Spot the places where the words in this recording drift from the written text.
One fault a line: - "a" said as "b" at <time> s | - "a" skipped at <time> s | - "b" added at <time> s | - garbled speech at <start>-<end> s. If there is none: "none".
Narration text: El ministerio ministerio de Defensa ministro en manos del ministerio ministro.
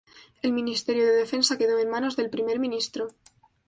- "ministerio" skipped at 1.1 s
- "ministro" said as "quedó" at 1.6 s
- "ministerio" said as "primer" at 2.3 s